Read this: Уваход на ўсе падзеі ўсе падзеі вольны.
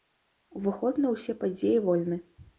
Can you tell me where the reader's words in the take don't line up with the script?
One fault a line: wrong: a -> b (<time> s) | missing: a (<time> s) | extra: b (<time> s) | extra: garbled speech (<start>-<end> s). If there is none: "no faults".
missing: ўсе падзеі (1.8 s)